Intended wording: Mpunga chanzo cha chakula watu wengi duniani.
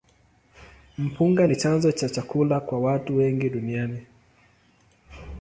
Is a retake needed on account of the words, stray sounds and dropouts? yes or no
yes